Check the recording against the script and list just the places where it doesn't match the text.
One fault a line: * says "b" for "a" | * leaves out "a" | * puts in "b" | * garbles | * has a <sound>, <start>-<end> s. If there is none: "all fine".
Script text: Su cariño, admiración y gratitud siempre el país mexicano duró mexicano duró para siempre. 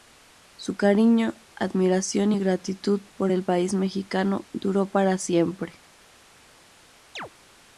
* says "por" for "siempre"
* leaves out "mexicano duró"
* has a chirp, 7.2-7.3 s